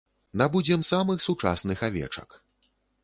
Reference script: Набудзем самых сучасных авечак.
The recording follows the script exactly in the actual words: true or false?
true